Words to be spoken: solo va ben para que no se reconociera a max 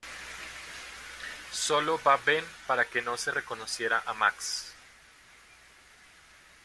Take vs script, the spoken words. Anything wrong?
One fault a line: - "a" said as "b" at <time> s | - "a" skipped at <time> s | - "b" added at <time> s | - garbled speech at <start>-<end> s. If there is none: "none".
none